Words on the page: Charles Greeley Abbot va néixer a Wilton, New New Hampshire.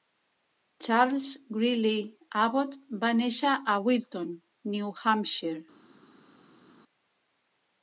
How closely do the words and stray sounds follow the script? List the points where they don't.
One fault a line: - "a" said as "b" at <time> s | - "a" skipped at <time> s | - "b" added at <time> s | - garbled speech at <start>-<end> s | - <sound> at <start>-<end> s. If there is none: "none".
- "New" skipped at 4.9 s